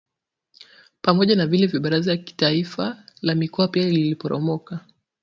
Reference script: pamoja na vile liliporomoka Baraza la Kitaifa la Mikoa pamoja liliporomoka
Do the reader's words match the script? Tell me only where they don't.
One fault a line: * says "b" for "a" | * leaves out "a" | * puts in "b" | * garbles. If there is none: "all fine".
* says "vya" for "liliporomoka"
* says "pia" for "pamoja"